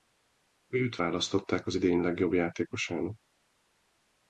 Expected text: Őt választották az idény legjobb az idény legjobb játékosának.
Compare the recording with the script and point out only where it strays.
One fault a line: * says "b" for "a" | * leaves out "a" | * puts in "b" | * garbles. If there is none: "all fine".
* leaves out "az idény legjobb"